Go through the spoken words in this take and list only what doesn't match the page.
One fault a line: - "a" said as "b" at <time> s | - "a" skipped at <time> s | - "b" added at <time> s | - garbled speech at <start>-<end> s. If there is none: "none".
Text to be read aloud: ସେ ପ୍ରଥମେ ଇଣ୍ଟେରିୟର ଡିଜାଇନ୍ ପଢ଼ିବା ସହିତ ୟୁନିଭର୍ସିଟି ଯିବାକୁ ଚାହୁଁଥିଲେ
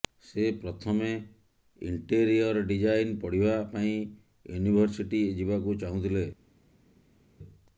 - "ସହିତ" said as "ପାଇଁ" at 3.7 s